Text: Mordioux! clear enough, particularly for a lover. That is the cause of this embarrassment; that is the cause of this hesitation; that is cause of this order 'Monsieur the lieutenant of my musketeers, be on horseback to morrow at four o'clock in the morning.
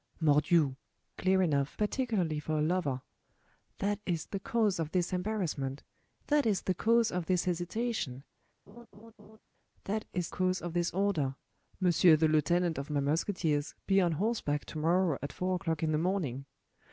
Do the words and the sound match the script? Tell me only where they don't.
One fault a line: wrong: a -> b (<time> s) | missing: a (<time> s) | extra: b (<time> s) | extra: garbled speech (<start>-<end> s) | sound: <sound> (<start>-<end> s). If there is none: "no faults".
sound: laugh (8.7-9.4 s)